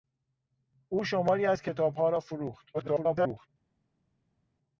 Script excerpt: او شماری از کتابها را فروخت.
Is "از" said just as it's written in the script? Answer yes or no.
yes